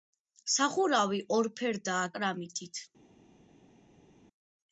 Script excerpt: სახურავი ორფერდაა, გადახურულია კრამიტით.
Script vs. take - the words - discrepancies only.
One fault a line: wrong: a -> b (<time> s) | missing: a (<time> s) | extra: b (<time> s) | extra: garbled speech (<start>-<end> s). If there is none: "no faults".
missing: გადახურულია (2.1 s)